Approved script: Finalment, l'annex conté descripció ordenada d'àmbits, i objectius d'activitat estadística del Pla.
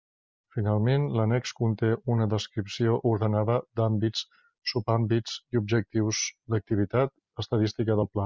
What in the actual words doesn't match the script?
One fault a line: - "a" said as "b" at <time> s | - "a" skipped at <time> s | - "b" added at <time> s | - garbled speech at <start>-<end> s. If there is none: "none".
- "una" added at 2.1 s
- "subàmbits" added at 4.7 s